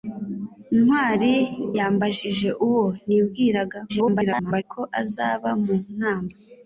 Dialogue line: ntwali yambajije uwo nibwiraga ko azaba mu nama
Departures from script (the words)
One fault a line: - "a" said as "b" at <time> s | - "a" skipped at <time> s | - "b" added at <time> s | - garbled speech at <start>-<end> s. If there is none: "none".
- garbled speech at 3.9-4.6 s